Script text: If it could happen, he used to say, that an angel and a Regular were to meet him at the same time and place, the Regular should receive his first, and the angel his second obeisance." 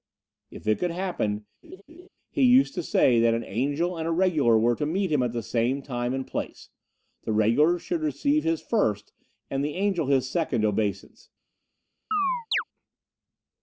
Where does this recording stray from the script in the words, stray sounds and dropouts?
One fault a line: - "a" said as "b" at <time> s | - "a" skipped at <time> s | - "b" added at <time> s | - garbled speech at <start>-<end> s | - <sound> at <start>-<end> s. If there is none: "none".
- laugh at 1.6-2.1 s
- chirp at 12.1-12.6 s